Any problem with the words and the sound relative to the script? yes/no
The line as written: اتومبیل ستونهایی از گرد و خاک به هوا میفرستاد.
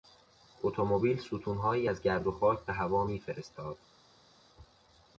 no